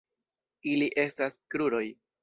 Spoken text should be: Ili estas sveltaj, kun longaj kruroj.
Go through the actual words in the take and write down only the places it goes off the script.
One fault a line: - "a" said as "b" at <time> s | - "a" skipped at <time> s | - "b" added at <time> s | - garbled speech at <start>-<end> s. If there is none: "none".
- "sveltaj kun longaj" skipped at 1.4 s